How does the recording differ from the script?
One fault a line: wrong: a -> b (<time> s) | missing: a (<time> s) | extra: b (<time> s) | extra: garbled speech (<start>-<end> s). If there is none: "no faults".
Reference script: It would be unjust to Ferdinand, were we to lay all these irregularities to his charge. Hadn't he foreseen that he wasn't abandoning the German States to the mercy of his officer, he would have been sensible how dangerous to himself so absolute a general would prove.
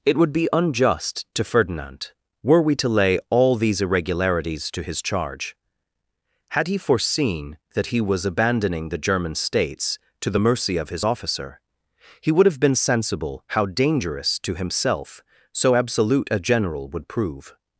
wrong: Hadn't -> Had (6.5 s)
wrong: wasn't -> was (8.0 s)